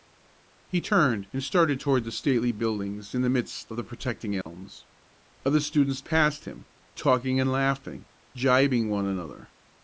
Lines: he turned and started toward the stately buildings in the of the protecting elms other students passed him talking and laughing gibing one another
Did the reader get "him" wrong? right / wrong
right